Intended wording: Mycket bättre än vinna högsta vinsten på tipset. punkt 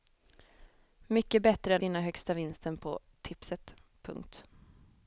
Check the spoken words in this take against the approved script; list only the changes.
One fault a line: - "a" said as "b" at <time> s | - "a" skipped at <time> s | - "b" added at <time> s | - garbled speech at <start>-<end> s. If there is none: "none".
none